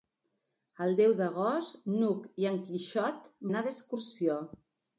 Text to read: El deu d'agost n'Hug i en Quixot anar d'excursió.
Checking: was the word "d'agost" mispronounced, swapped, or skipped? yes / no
no